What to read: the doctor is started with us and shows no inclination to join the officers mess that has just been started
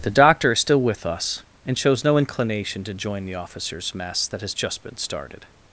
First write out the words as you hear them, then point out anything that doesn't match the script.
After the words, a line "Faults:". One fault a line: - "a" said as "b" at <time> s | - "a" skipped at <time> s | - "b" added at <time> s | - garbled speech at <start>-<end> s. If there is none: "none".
the doctor is still with us and shows no inclination to join the officers mess that has just been started
Faults:
- "started" said as "still" at 0.6 s